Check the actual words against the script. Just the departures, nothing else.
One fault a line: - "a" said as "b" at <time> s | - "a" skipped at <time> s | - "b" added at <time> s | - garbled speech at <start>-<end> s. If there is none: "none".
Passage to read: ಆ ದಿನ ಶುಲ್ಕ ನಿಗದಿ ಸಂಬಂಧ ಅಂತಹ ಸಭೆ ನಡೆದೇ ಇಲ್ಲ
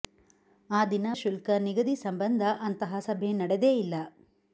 none